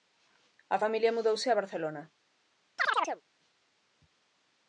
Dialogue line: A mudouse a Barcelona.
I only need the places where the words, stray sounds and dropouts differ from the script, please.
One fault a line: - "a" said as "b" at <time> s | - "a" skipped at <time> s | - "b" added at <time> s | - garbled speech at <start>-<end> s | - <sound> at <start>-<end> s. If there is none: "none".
- "familia" added at 0.8 s
- chirp at 2.8-3.2 s